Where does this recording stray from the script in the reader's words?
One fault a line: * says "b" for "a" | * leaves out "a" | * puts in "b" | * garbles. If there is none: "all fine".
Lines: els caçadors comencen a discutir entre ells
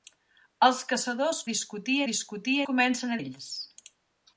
* says "discutir" for "comencen"
* says "comencen" for "entre"